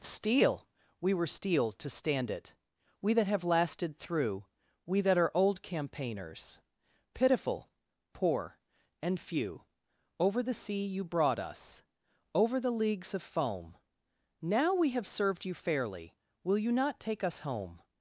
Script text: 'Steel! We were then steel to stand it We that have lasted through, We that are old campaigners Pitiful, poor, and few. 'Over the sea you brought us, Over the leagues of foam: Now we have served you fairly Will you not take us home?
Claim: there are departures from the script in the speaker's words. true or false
true